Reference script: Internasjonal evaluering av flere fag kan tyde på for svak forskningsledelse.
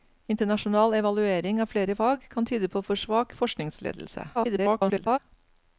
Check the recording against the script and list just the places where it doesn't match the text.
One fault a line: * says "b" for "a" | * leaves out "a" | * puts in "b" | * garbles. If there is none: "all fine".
* garbles